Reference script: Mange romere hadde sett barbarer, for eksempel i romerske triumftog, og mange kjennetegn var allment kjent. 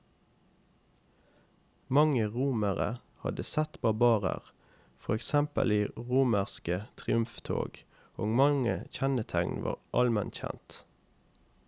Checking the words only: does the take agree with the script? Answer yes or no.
yes